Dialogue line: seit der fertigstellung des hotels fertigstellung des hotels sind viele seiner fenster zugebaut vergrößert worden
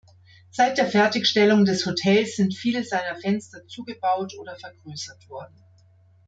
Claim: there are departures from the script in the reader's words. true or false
true